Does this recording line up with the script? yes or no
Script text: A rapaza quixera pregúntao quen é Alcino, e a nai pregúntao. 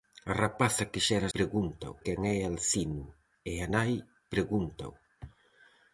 yes